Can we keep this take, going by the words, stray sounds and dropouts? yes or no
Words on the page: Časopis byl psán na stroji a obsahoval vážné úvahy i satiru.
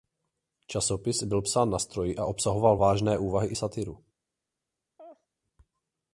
no